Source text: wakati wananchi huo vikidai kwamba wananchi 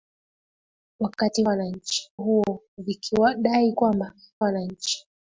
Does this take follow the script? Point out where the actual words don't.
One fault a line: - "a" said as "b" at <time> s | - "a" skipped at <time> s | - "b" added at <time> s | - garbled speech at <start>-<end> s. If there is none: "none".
none